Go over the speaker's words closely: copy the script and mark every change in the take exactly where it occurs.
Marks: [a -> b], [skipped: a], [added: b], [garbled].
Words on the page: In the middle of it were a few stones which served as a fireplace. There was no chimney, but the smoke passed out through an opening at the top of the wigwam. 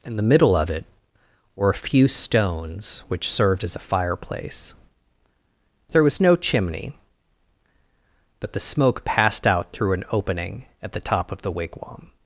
In the middle of it were a few stones which served as a fireplace. There was no chimney, but the smoke passed out through an opening at the top of the wigwam.